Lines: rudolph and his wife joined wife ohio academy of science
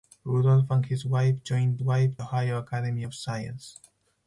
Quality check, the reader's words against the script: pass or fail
pass